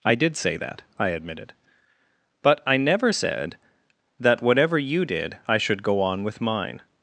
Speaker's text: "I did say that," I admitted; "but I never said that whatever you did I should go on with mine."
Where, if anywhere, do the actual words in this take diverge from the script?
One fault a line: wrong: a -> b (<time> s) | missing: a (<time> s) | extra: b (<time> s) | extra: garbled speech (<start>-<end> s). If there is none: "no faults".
no faults